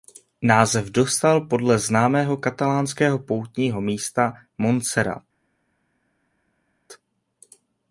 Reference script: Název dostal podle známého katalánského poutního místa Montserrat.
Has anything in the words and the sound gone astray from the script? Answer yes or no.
no